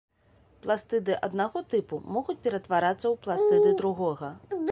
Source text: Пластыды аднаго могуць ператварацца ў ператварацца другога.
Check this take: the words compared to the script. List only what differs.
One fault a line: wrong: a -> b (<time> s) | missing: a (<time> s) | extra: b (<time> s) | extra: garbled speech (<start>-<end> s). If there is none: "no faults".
extra: тыпу (1.7 s)
wrong: ператварацца -> пластыды (3.3 s)